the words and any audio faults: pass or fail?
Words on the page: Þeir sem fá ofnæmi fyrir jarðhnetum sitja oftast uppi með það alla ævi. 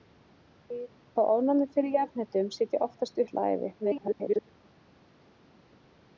fail